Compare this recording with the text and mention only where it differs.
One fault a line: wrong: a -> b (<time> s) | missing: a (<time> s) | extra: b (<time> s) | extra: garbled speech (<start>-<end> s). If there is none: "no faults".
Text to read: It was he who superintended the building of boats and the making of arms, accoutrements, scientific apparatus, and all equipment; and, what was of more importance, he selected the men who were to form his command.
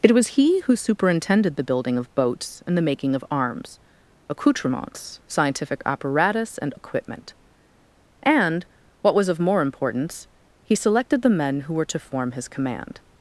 missing: all (6.7 s)